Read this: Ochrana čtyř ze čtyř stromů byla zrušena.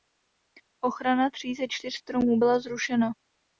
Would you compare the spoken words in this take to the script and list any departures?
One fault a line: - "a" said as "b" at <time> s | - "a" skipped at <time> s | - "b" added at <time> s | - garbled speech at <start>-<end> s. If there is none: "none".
- "čtyř" said as "tří" at 1.3 s